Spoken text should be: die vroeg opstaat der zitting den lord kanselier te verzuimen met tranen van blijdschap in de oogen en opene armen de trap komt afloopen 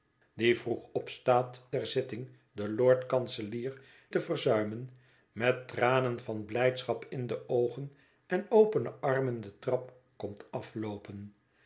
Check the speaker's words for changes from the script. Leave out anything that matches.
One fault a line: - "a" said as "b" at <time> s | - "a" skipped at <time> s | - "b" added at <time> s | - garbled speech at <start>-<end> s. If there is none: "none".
none